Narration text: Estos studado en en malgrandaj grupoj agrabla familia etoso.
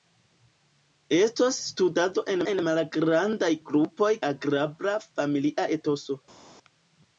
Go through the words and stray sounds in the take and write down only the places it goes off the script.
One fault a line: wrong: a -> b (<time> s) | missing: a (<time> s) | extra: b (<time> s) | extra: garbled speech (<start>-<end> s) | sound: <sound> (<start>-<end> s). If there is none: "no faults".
no faults